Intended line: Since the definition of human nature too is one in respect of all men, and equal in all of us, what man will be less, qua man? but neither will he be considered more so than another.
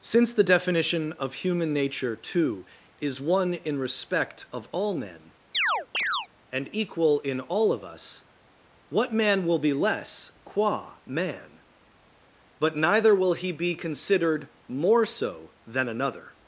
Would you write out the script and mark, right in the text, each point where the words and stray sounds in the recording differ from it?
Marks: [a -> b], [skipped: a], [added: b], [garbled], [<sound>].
Since the definition of human nature too is one in respect of all men, [chirp] and equal in all of us, what man will be less, qua man? but neither will he be considered more so than another.